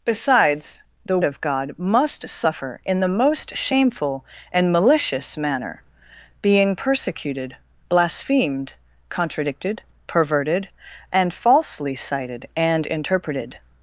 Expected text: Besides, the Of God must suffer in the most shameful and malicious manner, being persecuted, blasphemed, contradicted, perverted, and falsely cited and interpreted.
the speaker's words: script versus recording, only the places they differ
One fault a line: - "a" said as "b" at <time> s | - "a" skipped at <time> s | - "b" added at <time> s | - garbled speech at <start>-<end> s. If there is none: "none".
none